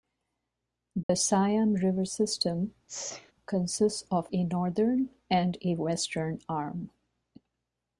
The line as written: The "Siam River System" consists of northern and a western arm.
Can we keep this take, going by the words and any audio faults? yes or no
no